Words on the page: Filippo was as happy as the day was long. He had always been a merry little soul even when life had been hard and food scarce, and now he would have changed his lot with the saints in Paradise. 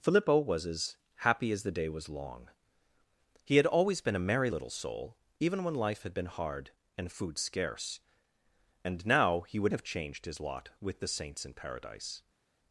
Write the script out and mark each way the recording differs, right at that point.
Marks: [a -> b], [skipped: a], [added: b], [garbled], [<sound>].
Filippo was as happy as the day was long. He had always been a merry little soul even when life had been hard and food scarce, and now he would have changed his lot with the saints in Paradise.